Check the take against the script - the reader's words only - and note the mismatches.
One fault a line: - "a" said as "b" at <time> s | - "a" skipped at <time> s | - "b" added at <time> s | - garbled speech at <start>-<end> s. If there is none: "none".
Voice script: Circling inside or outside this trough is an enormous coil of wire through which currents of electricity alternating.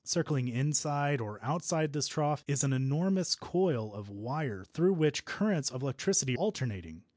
none